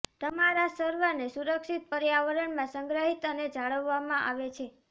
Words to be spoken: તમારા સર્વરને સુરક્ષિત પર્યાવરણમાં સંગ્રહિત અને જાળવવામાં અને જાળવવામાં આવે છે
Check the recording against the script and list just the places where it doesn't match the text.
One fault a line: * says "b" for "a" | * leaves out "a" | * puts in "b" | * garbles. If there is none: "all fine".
* leaves out "અને જાળવવામાં"